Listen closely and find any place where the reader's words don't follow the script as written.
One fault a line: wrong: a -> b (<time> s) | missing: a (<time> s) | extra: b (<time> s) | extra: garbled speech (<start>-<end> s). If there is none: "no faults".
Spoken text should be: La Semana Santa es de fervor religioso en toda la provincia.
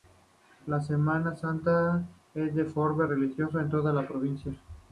no faults